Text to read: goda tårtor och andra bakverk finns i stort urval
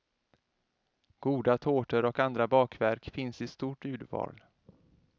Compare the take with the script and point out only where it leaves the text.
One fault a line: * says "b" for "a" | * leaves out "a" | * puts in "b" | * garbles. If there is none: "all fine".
all fine